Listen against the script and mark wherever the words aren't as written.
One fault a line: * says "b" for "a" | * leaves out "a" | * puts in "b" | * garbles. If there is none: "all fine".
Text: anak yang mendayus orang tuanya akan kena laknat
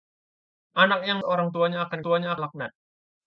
* leaves out "mendayus"
* says "tuanya" for "kena"